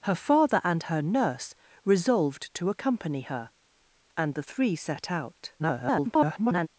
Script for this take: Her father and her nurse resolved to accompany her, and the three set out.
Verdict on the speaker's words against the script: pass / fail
fail